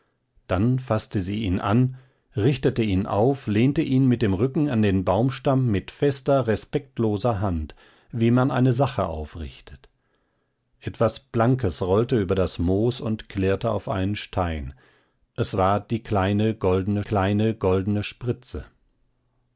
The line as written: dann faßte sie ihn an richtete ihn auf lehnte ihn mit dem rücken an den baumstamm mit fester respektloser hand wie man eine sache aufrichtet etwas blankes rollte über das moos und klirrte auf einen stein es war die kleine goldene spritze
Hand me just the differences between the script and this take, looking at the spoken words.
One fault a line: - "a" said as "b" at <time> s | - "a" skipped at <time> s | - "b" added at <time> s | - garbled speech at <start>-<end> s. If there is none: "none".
- "kleine goldene" added at 17.0 s